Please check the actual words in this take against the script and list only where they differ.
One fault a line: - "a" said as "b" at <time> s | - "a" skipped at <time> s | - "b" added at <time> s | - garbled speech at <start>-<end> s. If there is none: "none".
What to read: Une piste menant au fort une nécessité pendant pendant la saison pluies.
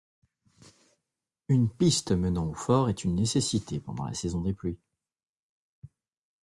- "est" added at 2.9 s
- "pendant" skipped at 4.0 s
- "des" added at 4.4 s